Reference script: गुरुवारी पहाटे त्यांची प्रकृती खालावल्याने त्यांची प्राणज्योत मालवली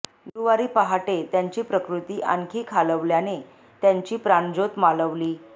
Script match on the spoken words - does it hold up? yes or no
no